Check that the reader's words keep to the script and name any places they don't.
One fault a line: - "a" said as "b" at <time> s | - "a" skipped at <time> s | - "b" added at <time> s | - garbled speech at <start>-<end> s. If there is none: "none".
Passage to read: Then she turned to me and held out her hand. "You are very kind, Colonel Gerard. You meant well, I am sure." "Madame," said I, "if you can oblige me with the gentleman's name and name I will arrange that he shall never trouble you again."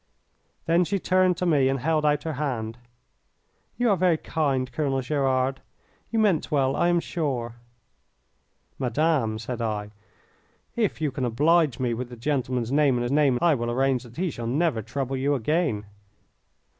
none